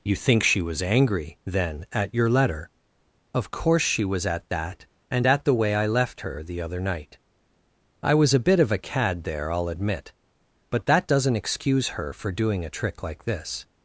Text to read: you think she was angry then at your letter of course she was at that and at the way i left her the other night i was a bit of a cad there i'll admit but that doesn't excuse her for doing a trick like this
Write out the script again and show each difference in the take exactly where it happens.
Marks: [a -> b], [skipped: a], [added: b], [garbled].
you think she was angry then at your letter of course she was at that and at the way i left her the other night i was a bit of a cad there i'll admit but that doesn't excuse her for doing a trick like this